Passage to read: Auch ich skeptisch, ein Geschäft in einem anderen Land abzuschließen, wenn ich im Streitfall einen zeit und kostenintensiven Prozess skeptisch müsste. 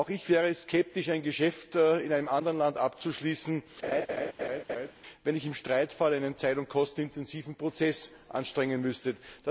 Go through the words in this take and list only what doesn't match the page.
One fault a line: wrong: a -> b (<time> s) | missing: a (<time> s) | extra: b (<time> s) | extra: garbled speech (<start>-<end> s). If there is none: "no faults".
extra: wäre (0.3 s)
wrong: skeptisch -> anstrengen (8.3 s)